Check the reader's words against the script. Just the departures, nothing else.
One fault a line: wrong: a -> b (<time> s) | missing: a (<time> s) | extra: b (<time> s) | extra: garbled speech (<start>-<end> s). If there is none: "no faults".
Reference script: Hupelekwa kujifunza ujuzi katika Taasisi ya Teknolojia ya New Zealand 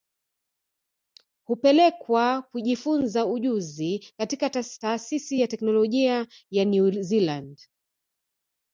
no faults